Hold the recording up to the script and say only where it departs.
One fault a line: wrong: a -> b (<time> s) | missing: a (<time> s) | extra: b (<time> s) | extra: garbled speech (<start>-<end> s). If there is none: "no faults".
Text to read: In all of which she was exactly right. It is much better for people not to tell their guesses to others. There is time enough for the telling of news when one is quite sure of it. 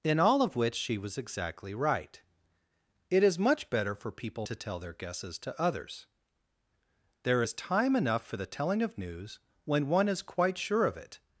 missing: not (4.5 s)